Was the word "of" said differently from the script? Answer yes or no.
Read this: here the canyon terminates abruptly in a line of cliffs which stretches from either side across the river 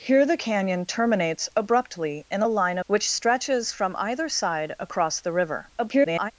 yes